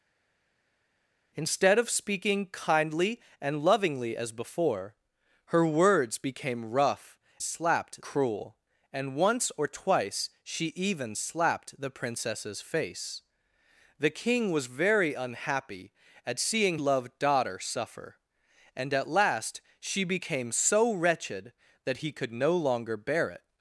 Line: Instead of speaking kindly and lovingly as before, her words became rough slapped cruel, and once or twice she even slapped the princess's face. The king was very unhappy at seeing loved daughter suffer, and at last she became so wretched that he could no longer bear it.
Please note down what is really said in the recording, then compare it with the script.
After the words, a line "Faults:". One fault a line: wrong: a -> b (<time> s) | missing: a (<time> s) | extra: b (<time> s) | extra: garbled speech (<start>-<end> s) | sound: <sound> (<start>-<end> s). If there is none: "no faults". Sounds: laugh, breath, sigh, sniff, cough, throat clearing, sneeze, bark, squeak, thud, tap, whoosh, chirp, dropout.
Instead of speaking kindly and lovingly as before, her words became rough slapped cruel, and once or twice she even slapped the princess's face. The king was very unhappy at seeing loved daughter suffer, and at last she became so wretched that he could no longer bear it.
Faults:
no faults